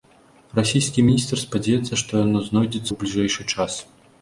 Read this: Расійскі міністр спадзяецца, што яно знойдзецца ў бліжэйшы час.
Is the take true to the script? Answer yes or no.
yes